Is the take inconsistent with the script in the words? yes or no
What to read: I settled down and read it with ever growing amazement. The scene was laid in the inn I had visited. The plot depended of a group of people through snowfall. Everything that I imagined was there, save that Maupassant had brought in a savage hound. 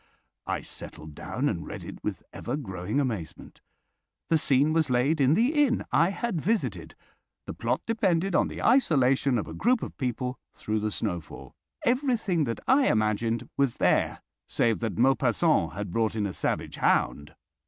yes